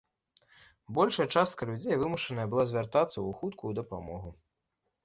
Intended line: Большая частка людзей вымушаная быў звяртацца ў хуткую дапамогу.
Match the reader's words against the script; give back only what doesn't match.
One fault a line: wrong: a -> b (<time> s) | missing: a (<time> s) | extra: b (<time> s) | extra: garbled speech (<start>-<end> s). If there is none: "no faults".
wrong: быў -> была (2.5 s)